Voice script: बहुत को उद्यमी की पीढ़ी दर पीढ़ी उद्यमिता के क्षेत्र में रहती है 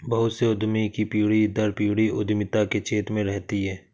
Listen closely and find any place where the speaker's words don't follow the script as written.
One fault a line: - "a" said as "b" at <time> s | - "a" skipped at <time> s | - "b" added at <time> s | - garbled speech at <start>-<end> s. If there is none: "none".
- "को" said as "से" at 0.3 s